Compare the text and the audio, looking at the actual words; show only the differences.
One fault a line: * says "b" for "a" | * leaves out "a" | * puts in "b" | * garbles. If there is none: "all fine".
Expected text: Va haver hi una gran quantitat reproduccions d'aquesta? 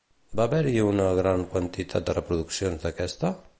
* puts in "de"